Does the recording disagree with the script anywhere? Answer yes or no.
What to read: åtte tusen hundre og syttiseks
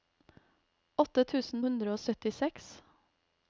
no